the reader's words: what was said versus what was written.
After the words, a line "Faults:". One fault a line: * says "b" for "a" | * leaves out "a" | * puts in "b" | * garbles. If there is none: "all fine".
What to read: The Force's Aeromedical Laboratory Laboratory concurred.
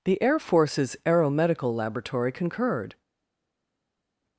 The Air Force's Aeromedical Laboratory concurred.
Faults:
* puts in "Air"
* leaves out "Laboratory"